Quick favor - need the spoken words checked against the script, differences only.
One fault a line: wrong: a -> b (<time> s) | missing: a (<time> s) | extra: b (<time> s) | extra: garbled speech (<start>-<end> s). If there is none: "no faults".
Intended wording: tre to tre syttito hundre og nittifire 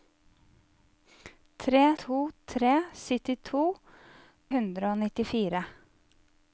no faults